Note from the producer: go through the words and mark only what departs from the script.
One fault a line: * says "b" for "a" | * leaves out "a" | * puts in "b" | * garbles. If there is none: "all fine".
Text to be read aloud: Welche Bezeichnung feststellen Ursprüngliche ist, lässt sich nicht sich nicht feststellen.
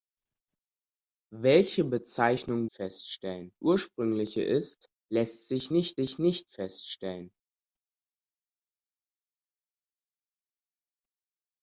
all fine